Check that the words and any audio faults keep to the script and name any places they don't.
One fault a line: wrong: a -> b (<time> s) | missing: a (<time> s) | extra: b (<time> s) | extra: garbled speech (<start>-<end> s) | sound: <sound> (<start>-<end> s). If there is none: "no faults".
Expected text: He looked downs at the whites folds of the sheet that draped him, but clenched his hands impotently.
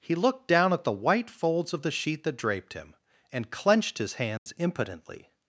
wrong: downs -> down (0.5 s)
wrong: whites -> white (0.9 s)
wrong: but -> and (3.3 s)
sound: dropout (4.4-4.5 s)